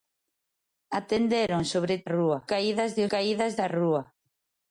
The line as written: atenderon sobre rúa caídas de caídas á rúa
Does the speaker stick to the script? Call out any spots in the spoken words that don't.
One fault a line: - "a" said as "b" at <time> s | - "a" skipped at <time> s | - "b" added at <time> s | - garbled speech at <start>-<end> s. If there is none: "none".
none